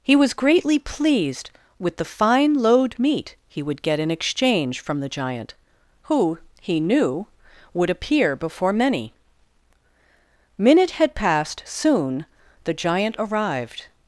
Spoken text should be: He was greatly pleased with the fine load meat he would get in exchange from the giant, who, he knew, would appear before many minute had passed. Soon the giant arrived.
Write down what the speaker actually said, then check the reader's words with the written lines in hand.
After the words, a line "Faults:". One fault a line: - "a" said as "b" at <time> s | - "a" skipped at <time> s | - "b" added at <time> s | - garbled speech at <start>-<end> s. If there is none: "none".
He was greatly pleased with the fine load meat he would get in exchange from the giant, who, he knew, would appear before many minute had passed. Soon the giant arrived.
Faults:
none